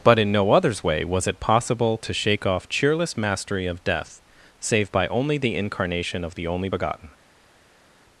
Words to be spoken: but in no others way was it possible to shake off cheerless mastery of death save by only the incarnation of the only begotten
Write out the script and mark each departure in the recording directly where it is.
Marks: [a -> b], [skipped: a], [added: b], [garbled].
but in no others way was it possible to shake off cheerless mastery of death save by only the incarnation of the only begotten